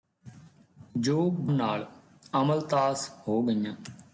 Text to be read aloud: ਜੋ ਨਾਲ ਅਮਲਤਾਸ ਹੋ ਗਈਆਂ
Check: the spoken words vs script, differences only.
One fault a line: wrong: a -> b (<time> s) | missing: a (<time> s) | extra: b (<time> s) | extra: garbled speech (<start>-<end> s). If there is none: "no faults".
no faults